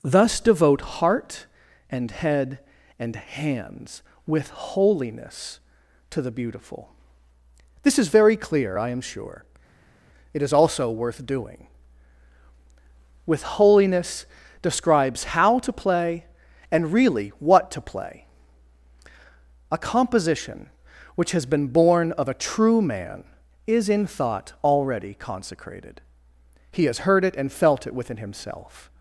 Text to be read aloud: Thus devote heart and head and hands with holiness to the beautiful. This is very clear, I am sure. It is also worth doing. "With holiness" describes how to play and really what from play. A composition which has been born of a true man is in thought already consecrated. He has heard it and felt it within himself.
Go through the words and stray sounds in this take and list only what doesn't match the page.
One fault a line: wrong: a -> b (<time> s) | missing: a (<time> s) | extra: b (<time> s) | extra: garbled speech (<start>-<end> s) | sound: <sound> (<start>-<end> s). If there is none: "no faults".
wrong: from -> to (17.7 s)